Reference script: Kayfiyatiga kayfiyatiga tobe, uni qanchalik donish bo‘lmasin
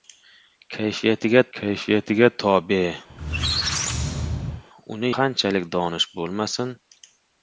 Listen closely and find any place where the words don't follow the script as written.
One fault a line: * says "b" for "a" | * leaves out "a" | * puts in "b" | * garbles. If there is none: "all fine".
all fine